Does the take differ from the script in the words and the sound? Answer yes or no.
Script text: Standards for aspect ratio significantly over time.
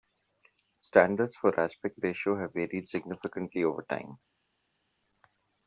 yes